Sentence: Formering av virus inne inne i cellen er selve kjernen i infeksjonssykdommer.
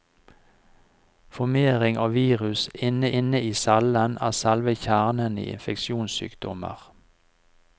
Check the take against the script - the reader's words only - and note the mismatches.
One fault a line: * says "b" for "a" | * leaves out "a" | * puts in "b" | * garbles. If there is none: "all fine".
all fine